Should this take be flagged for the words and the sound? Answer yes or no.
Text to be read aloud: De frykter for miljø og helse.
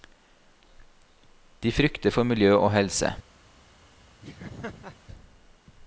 yes